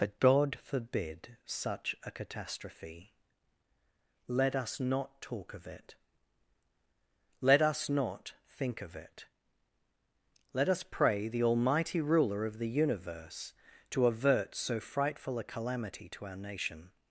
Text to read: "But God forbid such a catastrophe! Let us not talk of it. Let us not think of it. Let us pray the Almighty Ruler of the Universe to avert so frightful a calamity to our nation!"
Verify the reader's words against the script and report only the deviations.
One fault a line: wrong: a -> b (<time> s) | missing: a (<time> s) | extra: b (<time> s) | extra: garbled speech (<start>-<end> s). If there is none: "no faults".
no faults